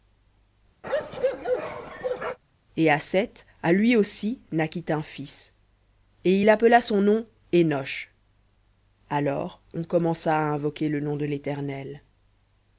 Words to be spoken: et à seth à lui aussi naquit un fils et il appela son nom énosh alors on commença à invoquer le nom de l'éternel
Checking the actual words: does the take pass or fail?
pass